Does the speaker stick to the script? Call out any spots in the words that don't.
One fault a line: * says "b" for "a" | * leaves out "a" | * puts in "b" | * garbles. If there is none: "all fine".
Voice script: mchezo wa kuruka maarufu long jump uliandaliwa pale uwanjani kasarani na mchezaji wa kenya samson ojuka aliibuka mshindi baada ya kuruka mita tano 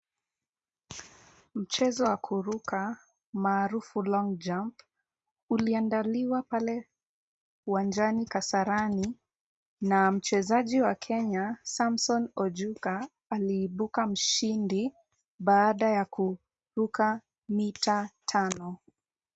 all fine